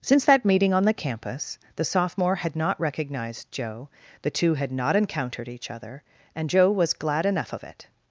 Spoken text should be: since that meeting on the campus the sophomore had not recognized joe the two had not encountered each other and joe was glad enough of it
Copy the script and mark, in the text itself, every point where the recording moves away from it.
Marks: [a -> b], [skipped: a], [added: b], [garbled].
since that meeting on the campus the sophomore had not recognized joe the two had not encountered each other and joe was glad enough of it